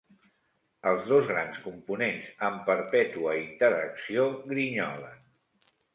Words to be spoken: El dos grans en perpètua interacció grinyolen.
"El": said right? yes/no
no